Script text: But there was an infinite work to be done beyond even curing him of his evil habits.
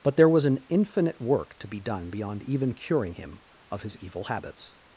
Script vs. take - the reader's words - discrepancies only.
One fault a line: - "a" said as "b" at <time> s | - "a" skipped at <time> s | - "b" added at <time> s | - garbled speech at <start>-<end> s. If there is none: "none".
none